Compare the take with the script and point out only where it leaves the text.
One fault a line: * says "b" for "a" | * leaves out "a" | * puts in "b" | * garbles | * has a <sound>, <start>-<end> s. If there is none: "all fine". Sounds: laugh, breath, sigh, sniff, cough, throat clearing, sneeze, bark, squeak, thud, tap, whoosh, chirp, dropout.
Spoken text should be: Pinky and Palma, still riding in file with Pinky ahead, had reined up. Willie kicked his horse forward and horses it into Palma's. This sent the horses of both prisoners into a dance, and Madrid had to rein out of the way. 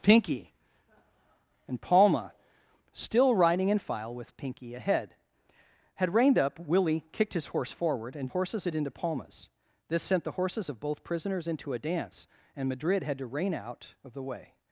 all fine